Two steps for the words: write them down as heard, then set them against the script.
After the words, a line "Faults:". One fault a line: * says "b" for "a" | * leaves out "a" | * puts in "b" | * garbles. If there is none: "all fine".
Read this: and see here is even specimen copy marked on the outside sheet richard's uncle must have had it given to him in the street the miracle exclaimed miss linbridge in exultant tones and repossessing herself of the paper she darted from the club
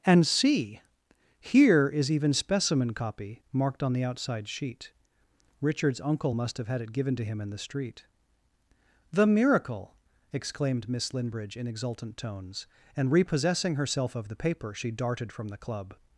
and see here is even specimen copy marked on the outside sheet richard's uncle must have had it given to him in the street the miracle exclaimed miss linbridge in exultant tones and repossessing herself of the paper she darted from the club
Faults:
all fine